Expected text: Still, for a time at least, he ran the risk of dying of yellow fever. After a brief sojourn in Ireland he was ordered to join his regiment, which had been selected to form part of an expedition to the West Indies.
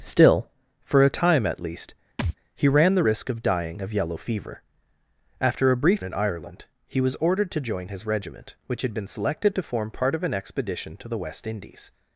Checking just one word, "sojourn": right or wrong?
wrong